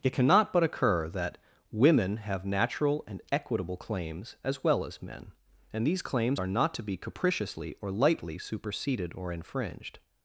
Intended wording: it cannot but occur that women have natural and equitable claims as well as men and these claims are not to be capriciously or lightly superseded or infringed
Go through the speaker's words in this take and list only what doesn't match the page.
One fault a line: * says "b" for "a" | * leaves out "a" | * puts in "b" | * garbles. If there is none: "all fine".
all fine